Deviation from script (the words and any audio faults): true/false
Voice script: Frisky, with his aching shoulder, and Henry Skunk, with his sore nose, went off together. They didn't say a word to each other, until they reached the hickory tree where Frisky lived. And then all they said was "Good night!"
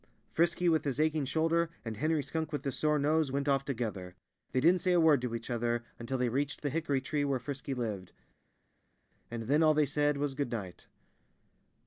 false